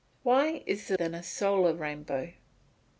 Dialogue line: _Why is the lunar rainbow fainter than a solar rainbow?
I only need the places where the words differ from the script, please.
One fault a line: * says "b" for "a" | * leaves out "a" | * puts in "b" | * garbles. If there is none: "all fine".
* leaves out "lunar rainbow fainter"